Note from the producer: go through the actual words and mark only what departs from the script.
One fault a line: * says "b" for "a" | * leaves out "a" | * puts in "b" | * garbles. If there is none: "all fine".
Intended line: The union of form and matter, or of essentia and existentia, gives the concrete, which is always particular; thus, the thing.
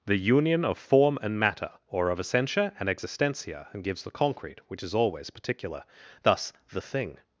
* puts in "and"